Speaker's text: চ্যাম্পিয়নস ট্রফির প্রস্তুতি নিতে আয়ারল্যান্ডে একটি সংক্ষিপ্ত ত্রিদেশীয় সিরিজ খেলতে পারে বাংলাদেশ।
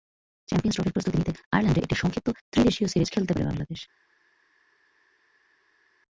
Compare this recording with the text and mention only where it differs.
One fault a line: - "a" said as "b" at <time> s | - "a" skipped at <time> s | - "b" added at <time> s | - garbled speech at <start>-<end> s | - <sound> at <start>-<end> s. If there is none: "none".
none